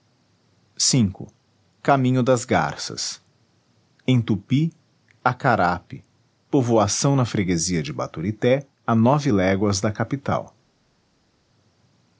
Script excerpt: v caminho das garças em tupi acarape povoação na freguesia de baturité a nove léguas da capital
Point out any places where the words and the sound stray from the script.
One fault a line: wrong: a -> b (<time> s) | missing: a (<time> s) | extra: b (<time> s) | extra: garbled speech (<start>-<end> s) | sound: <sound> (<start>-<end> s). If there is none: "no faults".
no faults